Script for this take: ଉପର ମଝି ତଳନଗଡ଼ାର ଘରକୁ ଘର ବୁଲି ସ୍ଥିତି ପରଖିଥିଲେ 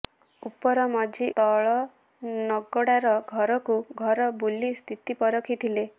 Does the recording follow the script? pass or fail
pass